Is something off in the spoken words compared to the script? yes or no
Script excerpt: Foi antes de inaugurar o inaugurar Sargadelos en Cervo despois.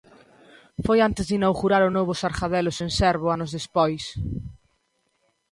yes